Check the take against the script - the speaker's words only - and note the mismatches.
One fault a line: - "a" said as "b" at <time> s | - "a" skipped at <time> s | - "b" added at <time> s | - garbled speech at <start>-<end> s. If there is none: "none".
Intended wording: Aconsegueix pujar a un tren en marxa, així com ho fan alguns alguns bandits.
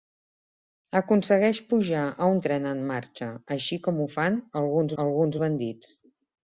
none